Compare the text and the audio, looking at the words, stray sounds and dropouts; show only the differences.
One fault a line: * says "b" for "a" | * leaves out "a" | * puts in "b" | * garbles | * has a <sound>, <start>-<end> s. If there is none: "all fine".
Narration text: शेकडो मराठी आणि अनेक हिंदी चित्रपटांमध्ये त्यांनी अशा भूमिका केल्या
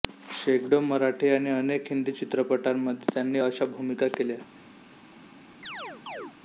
* has a chirp, 5.6-6.4 s